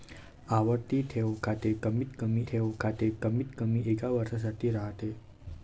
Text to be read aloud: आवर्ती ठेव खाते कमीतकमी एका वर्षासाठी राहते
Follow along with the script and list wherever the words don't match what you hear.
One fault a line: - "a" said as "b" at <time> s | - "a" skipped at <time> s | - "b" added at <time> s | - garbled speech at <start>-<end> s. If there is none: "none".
- "ठेव खाते कमीतकमी" added at 2.5 s